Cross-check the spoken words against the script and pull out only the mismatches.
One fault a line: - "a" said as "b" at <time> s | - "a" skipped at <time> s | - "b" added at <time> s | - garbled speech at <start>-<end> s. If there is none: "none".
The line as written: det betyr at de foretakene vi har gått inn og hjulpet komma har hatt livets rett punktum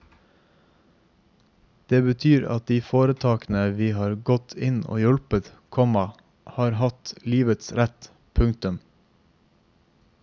none